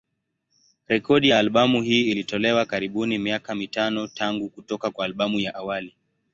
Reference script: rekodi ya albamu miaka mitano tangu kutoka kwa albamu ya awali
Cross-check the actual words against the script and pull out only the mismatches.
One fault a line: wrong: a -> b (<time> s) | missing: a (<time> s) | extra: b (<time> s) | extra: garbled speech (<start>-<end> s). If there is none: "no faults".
extra: hii ilitolewa karibuni (1.8 s)